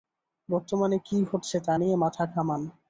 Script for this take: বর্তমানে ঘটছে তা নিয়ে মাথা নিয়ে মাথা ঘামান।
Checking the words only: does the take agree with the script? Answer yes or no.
no